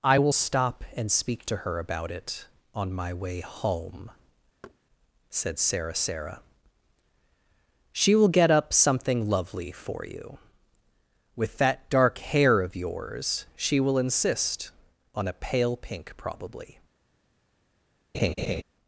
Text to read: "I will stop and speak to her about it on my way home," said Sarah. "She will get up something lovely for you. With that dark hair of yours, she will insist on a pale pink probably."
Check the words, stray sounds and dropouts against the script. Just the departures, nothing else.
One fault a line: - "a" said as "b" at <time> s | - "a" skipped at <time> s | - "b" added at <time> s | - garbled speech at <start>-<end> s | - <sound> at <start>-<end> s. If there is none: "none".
- thud at 4.6-4.8 s
- "Sarah" added at 5.9 s
- laugh at 18.1-18.6 s